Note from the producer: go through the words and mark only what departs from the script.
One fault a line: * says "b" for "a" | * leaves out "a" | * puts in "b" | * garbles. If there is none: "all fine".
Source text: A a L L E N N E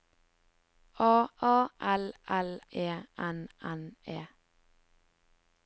all fine